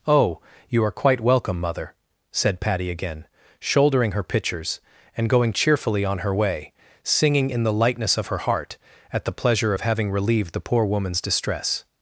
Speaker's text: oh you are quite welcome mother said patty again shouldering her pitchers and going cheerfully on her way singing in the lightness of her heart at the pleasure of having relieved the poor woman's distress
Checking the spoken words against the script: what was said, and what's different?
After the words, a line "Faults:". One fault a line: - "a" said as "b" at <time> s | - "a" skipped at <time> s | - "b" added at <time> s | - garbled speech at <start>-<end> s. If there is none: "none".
oh you are quite welcome mother said patty again shouldering her pitchers and going cheerfully on her way singing in the lightness of her heart at the pleasure of having relieved the poor woman's distress
Faults:
none